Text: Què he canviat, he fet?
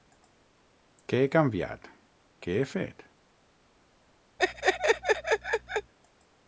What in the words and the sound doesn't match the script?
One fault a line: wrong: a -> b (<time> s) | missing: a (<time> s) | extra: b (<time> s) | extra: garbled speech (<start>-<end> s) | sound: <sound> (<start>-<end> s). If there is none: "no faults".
extra: què (2.5 s)
sound: laugh (4.4-5.9 s)